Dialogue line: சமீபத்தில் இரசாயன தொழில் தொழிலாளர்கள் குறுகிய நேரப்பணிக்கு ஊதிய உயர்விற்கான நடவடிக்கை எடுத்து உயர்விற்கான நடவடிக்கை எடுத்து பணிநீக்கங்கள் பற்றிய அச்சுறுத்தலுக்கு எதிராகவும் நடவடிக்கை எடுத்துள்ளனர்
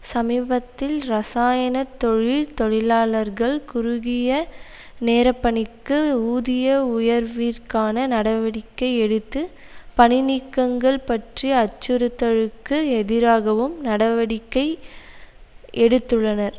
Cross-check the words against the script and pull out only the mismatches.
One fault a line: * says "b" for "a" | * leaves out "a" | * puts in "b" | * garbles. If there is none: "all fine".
* leaves out "உயர்விற்கான நடவடிக்கை எடுத்து"